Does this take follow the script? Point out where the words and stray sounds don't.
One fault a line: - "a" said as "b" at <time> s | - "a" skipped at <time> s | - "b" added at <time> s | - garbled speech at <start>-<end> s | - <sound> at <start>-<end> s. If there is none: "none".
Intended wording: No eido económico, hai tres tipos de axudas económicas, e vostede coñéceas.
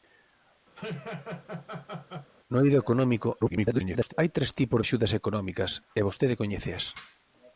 - laugh at 0.8-2.3 s
- garbled speech at 3.4-4.1 s
- "de" skipped at 4.8 s